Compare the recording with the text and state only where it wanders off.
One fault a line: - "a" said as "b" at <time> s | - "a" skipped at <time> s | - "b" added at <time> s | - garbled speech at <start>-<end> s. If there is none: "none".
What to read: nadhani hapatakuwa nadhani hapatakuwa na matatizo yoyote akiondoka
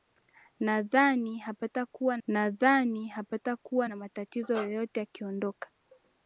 none